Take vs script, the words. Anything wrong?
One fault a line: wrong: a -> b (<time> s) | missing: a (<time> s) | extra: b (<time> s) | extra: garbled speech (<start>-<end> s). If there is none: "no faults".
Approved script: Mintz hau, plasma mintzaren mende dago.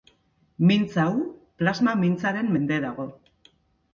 no faults